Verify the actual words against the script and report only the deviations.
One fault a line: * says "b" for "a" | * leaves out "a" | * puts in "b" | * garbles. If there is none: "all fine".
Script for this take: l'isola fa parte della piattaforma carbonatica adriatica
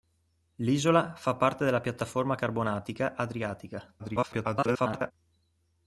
* garbles